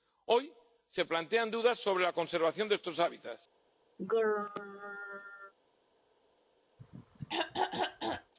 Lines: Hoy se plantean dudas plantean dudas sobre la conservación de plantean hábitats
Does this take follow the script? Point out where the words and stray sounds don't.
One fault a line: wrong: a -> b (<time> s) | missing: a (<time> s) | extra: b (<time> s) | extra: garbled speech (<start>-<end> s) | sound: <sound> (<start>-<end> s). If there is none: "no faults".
missing: plantean dudas (1.8 s)
wrong: plantean -> estos (2.7 s)
sound: throat clearing (4.0-5.5 s)
sound: throat clearing (6.8-8.3 s)